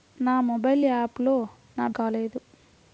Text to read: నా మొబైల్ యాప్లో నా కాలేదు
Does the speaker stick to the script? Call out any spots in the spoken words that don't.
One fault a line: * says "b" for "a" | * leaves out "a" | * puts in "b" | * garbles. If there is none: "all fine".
all fine